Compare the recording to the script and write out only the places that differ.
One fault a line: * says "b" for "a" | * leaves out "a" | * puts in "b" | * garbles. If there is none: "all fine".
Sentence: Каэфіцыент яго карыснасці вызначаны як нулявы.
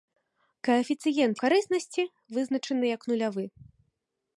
* leaves out "яго"